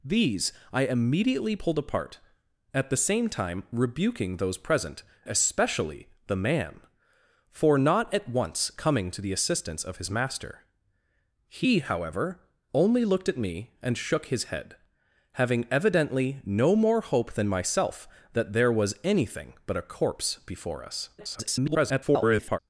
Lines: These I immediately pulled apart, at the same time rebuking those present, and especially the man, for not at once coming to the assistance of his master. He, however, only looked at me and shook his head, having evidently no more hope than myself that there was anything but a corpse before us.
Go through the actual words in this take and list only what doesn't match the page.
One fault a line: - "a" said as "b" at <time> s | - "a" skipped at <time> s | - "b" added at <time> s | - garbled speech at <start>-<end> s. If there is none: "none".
- "and" skipped at 5.0 s
- garbled speech at 21.2-22.6 s